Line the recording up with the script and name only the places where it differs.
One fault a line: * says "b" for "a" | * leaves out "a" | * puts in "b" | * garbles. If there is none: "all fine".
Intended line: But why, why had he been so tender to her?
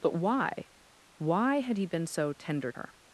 * leaves out "to"